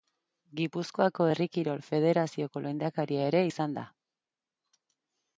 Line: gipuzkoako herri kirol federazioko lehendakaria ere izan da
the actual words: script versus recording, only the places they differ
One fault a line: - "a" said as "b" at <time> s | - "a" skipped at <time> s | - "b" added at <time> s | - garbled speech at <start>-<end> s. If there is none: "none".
none